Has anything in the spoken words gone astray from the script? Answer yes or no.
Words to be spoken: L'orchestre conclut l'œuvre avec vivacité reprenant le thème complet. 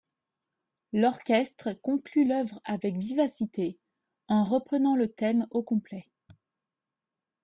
yes